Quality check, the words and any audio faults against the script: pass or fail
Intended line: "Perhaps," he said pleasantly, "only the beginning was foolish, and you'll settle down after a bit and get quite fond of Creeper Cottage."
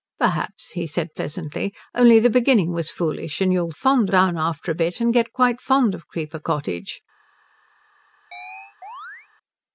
fail